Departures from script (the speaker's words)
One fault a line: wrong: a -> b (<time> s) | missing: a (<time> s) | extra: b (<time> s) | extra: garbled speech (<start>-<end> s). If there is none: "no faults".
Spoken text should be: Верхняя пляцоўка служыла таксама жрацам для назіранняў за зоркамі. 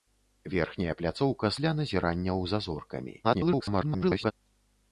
missing: служыла таксама жрацам (1.5 s)
extra: garbled speech (3.2-4.3 s)